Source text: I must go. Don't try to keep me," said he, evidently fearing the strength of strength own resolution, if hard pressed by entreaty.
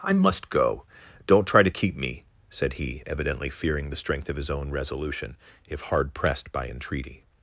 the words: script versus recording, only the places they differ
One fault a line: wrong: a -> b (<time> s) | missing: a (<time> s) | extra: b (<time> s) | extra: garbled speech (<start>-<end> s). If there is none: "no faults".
wrong: strength -> his (4.3 s)